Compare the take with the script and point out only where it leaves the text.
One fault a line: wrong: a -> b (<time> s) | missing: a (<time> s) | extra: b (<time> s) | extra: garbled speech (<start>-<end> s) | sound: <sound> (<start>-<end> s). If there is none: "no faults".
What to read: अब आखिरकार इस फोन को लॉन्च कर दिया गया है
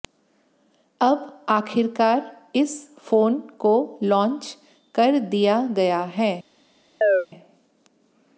sound: chirp (7.0-7.3 s)